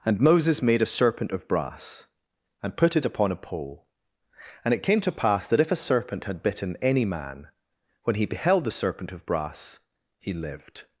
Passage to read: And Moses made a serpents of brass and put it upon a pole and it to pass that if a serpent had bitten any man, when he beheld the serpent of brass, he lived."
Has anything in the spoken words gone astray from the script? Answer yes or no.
yes